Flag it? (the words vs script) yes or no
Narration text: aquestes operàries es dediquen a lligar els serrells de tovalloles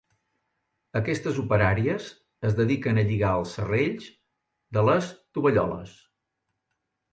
yes